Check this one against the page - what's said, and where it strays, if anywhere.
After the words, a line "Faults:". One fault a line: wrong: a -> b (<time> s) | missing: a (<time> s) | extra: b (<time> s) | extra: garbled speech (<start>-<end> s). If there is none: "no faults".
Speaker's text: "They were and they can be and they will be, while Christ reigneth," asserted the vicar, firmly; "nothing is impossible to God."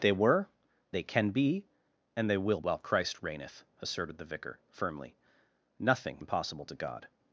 "They were they can be and they will while Christ reigneth," asserted the vicar, firmly; "nothing impossible to God."
Faults:
missing: and (0.5 s)
missing: be (2.6 s)
missing: is (6.2 s)